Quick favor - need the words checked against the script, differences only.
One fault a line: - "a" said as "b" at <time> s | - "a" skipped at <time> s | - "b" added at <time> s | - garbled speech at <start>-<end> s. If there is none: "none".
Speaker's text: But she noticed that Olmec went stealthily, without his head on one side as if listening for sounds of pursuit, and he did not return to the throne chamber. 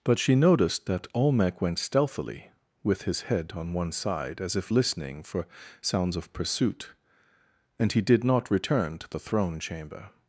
- "without" said as "with" at 2.8 s